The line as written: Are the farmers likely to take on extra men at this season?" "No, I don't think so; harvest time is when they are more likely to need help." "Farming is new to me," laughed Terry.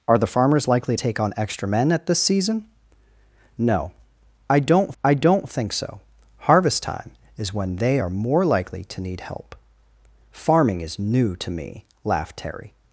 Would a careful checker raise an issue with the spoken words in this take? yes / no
yes